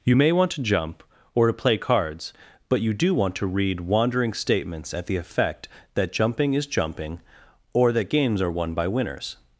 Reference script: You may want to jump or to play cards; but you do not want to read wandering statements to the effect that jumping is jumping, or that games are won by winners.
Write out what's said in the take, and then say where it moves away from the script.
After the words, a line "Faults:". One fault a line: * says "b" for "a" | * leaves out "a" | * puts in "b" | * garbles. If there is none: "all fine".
You may want to jump or to play cards; but you do want to read wandering statements at the effect that jumping is jumping, or that games are won by winners.
Faults:
* leaves out "not"
* says "at" for "to"